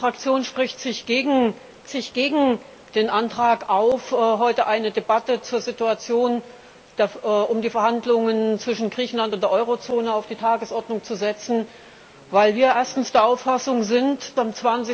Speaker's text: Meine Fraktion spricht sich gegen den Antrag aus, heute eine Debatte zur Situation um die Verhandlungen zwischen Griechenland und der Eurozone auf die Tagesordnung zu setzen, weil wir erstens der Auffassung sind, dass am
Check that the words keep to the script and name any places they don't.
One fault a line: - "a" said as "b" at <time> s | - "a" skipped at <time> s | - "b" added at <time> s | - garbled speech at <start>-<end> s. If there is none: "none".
- "sich gegen" added at 1.9 s
- "dass" skipped at 14.4 s